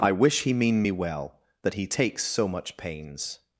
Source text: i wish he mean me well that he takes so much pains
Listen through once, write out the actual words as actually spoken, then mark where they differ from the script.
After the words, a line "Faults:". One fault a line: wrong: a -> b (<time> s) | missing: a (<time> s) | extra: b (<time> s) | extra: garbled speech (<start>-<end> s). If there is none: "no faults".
i wish he mean me well that he takes so much pains
Faults:
no faults